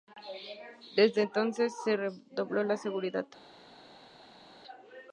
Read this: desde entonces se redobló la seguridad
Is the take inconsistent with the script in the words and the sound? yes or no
no